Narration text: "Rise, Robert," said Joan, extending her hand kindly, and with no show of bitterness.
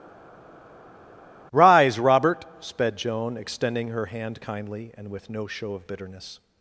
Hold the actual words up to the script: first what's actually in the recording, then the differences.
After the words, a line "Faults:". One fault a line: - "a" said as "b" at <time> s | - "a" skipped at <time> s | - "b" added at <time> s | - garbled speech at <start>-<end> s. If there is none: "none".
"Rise, Robert," sped Joan, extending her hand kindly, and with no show of bitterness.
Faults:
- "said" said as "sped" at 2.6 s